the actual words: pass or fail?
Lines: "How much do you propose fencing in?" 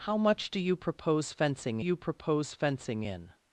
fail